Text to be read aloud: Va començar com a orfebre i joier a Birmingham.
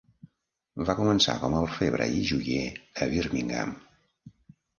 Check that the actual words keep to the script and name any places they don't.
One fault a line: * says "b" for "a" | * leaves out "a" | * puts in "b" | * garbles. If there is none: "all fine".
all fine